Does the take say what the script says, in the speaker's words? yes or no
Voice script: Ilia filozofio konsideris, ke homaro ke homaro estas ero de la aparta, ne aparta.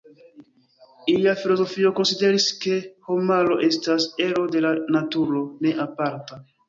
no